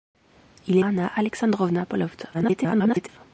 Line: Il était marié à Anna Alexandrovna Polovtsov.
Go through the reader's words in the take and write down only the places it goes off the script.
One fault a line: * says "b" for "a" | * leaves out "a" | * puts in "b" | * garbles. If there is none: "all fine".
* leaves out "était marié à"
* garbles